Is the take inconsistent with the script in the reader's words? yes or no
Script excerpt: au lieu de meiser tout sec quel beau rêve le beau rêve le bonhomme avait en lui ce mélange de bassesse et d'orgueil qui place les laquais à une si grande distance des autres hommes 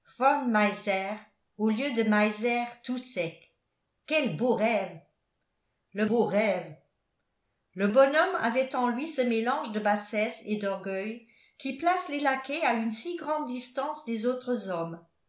no